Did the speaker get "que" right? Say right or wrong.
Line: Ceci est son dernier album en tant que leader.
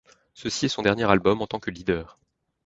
right